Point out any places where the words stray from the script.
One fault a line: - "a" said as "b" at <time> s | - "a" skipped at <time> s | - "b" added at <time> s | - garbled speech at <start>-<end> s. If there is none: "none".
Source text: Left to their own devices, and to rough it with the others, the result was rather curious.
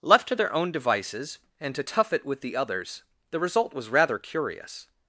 - "rough" said as "tough" at 1.8 s